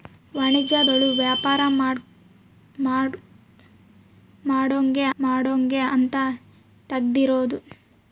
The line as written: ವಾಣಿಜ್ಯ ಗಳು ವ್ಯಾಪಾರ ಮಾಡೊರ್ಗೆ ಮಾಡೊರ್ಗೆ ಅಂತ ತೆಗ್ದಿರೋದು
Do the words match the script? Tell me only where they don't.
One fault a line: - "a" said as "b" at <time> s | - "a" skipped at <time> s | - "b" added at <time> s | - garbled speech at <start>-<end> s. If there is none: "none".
none